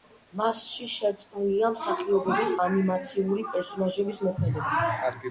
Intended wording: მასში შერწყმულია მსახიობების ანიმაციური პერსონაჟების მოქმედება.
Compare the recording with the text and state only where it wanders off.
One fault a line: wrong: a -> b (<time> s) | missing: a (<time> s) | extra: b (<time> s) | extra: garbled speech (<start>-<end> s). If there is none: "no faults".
no faults